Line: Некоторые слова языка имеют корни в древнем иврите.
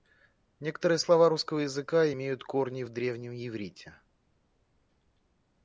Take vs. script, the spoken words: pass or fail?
fail